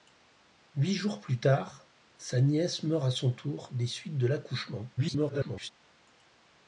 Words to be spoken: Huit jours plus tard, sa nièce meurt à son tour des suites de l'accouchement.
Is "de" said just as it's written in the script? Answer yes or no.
yes